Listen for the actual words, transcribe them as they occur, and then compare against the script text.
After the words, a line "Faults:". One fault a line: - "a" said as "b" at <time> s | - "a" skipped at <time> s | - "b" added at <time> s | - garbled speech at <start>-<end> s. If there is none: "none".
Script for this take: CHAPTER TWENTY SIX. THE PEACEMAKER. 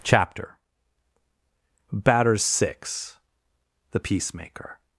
CHAPTER Batters SIX. THE PEACEMAKER.
Faults:
- "TWENTY" said as "Batters" at 1.9 s